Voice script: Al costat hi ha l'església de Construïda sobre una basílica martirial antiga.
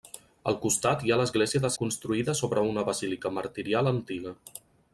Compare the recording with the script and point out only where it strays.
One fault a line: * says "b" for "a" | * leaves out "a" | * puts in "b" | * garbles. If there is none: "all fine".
all fine